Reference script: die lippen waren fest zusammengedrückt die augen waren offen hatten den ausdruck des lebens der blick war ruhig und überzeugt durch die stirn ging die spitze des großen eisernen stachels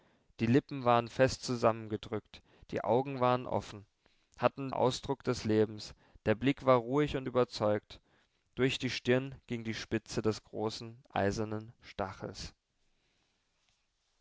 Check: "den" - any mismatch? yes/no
yes